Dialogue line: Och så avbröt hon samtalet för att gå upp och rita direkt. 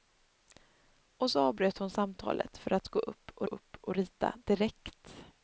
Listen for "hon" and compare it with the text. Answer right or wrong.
right